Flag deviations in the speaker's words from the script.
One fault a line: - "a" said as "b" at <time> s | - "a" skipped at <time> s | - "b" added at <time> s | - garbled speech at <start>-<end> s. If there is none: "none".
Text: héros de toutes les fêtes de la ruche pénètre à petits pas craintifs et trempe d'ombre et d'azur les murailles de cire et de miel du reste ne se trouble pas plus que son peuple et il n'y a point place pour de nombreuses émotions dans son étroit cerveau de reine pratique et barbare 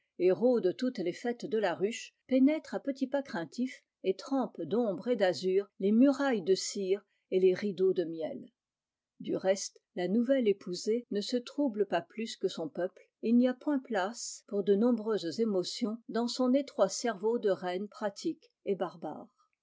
- "les rideaux" added at 7.4 s
- "la nouvelle épousée" added at 10.0 s